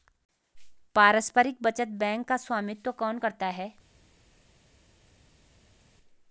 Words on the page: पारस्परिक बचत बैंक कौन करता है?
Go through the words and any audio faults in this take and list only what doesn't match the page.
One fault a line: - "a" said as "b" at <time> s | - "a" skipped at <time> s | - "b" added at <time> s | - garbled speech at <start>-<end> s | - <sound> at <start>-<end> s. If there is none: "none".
- "का स्वामित्व" added at 2.3 s